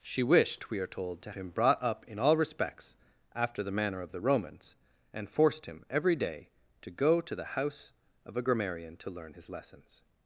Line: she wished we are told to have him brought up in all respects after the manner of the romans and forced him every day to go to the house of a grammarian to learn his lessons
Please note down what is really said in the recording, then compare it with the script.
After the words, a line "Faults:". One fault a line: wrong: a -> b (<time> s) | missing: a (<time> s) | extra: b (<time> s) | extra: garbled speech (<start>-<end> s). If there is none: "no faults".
she wished we are told to him brought up in all respects after the manner of the romans and forced him every day to go to the house of a grammarian to learn his lessons
Faults:
missing: have (1.3 s)